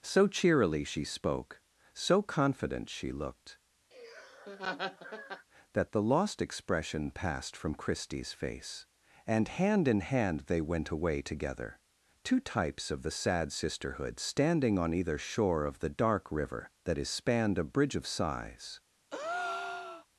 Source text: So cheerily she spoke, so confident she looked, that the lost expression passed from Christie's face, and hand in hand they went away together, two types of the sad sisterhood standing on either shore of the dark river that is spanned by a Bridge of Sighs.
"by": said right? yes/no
no